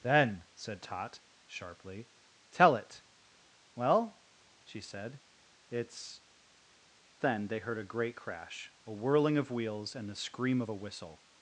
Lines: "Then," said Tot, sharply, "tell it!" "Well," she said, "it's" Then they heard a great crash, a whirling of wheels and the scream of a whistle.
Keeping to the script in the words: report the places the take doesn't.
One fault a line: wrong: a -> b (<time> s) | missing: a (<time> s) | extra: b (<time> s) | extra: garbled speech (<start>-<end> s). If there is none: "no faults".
no faults